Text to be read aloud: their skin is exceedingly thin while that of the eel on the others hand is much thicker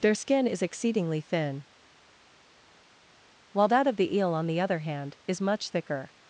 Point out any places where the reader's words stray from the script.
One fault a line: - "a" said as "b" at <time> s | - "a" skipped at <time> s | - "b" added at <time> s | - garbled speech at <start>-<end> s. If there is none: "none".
- "others" said as "other" at 4.6 s